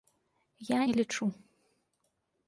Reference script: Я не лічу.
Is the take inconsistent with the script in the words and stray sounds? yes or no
no